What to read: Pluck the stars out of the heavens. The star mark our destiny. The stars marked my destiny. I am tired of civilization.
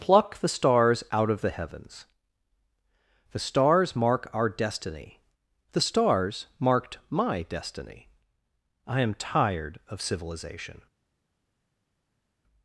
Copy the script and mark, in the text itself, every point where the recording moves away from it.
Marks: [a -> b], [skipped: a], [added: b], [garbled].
Pluck the stars out of the heavens. The [star -> stars] mark our destiny. The stars marked my destiny. I am tired of civilization.